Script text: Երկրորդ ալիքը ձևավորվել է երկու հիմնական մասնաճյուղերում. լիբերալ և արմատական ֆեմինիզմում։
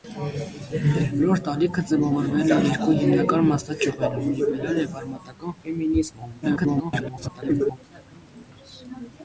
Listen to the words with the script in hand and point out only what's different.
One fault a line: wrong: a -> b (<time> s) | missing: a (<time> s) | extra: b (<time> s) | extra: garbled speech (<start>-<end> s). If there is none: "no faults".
extra: garbled speech (6.4-7.8 s)